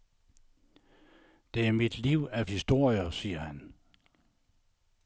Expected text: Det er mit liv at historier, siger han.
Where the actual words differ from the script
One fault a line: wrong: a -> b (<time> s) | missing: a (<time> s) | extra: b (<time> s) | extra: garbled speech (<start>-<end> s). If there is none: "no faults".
no faults